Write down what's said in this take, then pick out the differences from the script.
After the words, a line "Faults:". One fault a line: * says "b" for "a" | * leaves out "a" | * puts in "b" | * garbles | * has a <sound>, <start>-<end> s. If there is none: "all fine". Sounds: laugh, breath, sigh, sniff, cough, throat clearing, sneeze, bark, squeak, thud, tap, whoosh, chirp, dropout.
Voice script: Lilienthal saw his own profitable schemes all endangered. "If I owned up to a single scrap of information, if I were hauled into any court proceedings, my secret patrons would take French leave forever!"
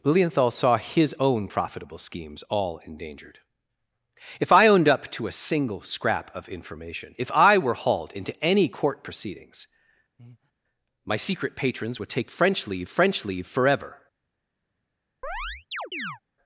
Lilienthal saw his own profitable schemes all endangered. "If I owned up to a single scrap of information, if I were hauled into any court proceedings, my secret patrons would take French leave French leave forever!"
Faults:
* has a breath, 10.2-10.5 s
* puts in "French leave"
* has a chirp, 15.2-16.2 s